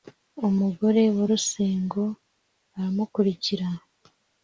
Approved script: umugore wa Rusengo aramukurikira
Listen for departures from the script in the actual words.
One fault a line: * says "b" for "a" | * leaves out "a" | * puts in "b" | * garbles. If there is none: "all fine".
all fine